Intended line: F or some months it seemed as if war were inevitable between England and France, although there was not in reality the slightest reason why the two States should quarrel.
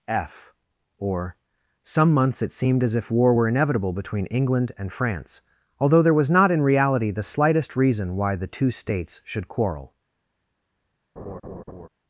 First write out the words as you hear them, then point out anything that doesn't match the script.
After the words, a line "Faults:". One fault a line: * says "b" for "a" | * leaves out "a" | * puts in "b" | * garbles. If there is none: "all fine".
F or some months it seemed as if war were inevitable between England and France, although there was not in reality the slightest reason why the two States should quarrel.
Faults:
all fine